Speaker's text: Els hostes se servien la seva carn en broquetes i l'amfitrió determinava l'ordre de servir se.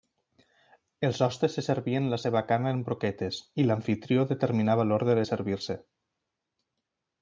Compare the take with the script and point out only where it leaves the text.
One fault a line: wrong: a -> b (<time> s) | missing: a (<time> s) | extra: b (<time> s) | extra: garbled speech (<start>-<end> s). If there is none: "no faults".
no faults